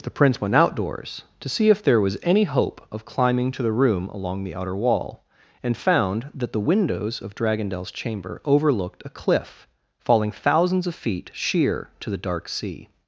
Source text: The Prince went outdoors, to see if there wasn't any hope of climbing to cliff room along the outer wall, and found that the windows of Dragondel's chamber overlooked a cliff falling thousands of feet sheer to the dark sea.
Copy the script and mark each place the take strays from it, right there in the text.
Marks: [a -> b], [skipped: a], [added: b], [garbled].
The Prince went outdoors, to see if there [wasn't -> was] any hope of climbing to [cliff -> the] room along the outer wall, and found that the windows of Dragondel's chamber overlooked a cliff falling thousands of feet sheer to the dark sea.